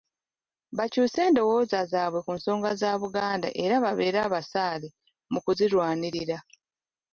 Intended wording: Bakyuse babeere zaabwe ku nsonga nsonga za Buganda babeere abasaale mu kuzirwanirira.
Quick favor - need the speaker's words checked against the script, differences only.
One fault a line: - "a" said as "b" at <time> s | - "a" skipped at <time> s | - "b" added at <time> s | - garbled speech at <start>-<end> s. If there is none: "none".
- "babeere" said as "endowooza" at 1.3 s
- "nsonga" skipped at 2.7 s
- "era" added at 3.6 s